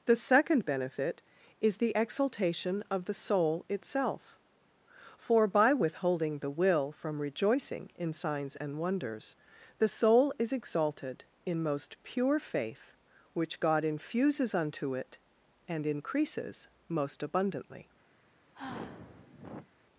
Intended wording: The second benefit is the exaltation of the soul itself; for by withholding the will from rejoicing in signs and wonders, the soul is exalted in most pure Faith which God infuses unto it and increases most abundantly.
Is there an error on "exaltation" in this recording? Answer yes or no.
no